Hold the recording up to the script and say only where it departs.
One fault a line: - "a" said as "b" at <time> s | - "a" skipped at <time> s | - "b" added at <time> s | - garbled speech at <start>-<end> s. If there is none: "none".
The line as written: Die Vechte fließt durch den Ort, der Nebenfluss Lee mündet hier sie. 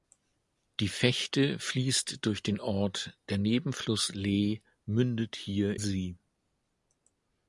none